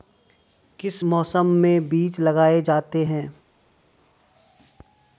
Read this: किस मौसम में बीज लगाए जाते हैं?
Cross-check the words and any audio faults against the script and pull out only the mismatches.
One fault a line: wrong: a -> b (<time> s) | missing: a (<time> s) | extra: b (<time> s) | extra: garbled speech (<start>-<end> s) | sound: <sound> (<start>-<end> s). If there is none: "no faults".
no faults